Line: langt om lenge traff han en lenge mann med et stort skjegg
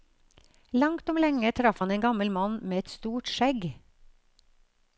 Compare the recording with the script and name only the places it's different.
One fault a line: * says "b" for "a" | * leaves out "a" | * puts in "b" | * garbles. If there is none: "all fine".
* says "gammel" for "lenge"